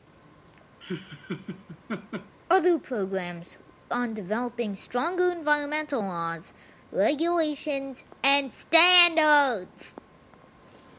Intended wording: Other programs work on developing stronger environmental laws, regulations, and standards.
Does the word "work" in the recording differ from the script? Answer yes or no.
yes